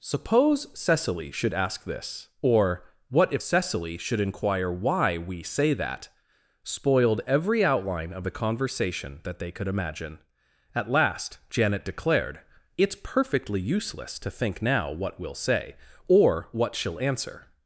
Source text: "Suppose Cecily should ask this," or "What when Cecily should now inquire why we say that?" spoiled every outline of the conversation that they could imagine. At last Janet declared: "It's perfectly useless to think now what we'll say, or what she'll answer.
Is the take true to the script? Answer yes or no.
no